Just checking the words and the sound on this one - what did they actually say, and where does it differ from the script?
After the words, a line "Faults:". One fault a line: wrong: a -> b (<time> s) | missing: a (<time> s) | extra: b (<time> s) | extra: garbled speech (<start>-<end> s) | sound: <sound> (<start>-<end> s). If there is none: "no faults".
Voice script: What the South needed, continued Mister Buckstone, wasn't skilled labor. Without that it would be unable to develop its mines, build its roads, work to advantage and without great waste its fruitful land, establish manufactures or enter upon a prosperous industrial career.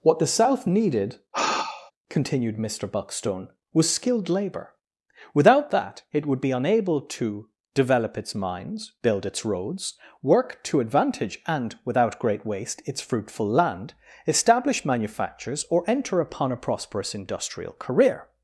What the South needed, continued Mister Buckstone, was skilled labor. Without that it would be unable to develop its mines, build its roads, work to advantage and without great waste its fruitful land, establish manufactures or enter upon a prosperous industrial career.
Faults:
sound: sigh (1.3-1.9 s)
wrong: wasn't -> was (3.7 s)